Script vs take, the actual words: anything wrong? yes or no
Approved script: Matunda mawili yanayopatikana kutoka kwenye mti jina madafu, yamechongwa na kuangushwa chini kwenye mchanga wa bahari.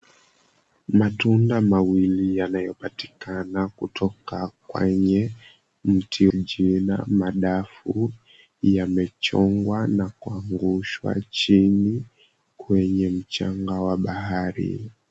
no